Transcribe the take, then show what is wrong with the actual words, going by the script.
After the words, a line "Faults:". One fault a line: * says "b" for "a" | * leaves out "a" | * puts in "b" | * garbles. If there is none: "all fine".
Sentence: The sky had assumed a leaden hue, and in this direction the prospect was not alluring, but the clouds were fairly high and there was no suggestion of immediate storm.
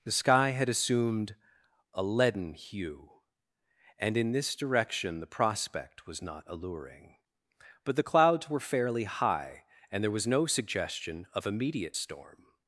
The sky had assumed a leaden hue, and in this direction the prospect was not alluring, but the clouds were fairly high and there was no suggestion of immediate storm.
Faults:
all fine